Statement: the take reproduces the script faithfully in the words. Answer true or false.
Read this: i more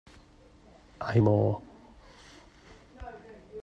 true